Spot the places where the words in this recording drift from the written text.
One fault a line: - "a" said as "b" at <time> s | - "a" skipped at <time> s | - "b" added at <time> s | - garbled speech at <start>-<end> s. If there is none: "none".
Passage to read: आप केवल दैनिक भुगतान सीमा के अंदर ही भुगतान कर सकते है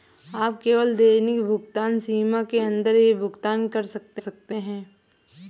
- "सकते" added at 4.2 s